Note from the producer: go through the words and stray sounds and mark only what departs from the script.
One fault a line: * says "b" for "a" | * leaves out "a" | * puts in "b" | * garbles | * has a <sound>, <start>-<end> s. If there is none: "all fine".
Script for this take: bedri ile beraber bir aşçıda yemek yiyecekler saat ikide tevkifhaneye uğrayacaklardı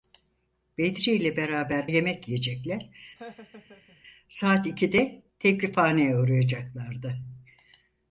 * leaves out "bir aşçıda"
* has a laugh, 3.2-4.0 s